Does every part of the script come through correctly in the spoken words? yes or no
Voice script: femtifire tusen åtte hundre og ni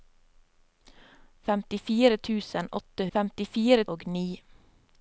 no